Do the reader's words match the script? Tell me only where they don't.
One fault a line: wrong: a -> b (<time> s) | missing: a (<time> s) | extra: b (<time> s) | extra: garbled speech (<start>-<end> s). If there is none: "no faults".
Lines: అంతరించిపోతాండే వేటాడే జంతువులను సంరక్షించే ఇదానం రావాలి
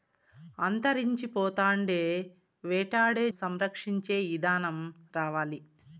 missing: జంతువులను (3.3 s)